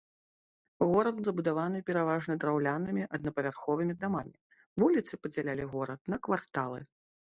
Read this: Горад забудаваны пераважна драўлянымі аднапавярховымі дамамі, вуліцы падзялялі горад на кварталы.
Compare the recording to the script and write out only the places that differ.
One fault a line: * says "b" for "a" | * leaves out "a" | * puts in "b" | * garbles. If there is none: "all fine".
all fine